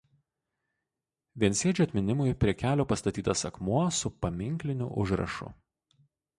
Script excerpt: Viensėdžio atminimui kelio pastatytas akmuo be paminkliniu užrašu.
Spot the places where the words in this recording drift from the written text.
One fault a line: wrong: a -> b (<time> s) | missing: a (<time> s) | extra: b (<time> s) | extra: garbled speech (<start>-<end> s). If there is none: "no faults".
extra: prie (2.4 s)
wrong: be -> su (4.0 s)